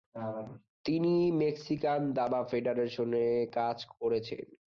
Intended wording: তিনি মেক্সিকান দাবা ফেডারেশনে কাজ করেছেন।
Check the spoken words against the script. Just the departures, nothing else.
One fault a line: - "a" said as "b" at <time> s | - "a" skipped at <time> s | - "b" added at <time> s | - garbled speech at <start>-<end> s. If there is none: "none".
none